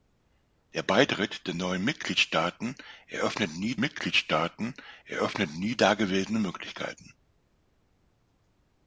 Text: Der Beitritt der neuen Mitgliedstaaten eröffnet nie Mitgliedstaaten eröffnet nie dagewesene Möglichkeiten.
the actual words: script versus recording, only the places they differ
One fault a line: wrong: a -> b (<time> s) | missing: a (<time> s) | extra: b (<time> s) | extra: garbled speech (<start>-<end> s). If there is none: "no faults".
no faults